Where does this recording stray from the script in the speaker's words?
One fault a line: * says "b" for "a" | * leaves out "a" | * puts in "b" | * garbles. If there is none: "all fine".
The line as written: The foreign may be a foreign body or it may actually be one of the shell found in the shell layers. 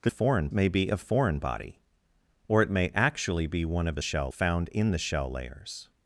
all fine